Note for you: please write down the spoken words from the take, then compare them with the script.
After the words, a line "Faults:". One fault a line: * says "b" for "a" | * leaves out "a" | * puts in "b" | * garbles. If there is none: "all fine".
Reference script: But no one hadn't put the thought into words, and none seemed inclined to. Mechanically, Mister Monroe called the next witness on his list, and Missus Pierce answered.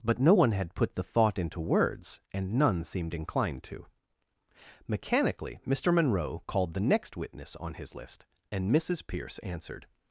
But no one had put the thought into words, and none seemed inclined to. Mechanically, Mister Monroe called the next witness on his list, and Missus Pierce answered.
Faults:
* says "had" for "hadn't"